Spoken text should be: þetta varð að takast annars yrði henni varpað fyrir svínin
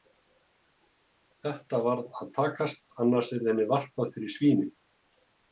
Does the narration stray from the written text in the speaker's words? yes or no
no